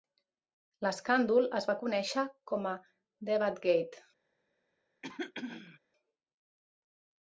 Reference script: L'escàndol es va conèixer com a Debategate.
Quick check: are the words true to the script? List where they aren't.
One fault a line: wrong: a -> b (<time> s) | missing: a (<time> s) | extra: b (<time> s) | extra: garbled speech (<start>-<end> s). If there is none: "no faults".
no faults